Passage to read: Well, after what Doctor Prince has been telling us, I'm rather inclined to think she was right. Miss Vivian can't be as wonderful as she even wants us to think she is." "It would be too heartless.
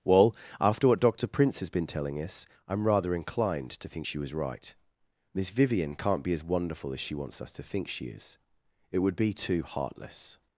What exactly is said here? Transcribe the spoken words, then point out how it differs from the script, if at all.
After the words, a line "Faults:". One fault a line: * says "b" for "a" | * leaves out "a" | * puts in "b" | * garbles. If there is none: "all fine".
Well, after what Doctor Prince has been telling us, I'm rather inclined to think she was right. Miss Vivian can't be as wonderful as she wants us to think she is." "It would be too heartless.
Faults:
* leaves out "even"